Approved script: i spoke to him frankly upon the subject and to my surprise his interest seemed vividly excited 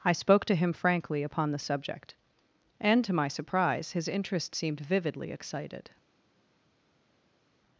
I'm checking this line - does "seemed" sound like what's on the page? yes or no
yes